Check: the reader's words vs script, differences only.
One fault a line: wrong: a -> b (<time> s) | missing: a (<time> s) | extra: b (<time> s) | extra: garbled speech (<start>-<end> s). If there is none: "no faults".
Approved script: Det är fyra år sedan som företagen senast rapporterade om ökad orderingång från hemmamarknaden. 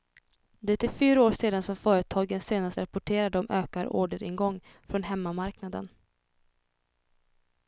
no faults